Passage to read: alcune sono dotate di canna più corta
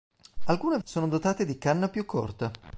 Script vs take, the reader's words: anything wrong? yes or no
no